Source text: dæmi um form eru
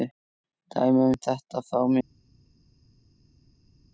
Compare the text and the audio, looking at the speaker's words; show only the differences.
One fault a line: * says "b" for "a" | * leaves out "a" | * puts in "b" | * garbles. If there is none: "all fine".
* puts in "þetta"